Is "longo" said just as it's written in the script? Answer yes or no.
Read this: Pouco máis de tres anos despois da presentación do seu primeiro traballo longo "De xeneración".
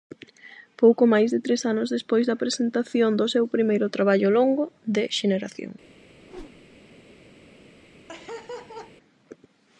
yes